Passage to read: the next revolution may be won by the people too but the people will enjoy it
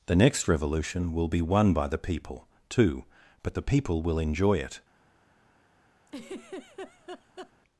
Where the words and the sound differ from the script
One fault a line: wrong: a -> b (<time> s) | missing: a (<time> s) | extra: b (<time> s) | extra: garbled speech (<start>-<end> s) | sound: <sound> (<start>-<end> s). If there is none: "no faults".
wrong: may -> will (1.1 s)
sound: laugh (6.1-7.5 s)